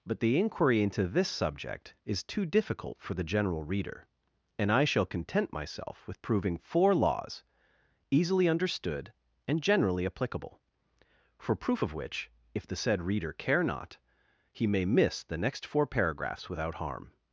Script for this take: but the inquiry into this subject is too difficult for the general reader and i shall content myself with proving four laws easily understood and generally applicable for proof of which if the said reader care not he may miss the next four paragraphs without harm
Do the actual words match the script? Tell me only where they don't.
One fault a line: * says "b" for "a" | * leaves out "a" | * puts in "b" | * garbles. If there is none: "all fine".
all fine